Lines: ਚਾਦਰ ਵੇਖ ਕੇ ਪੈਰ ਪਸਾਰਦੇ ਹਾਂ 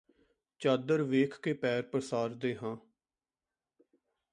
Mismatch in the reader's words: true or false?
false